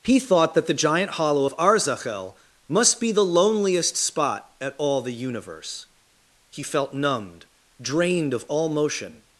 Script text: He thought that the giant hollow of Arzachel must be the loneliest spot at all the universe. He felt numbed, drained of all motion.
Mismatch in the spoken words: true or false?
false